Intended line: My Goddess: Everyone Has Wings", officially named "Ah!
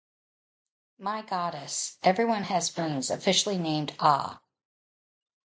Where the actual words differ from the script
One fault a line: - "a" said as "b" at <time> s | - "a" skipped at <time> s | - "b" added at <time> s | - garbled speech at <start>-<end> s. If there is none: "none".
none